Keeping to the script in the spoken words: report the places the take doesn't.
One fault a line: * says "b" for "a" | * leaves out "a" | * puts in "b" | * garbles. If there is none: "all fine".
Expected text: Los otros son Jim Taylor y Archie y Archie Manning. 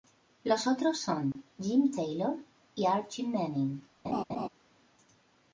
* leaves out "y Archie"